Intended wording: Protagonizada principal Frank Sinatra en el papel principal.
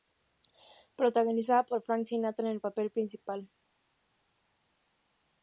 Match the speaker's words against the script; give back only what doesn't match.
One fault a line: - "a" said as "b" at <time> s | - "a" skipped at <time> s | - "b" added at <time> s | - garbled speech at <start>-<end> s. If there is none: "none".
- "principal" said as "por" at 1.7 s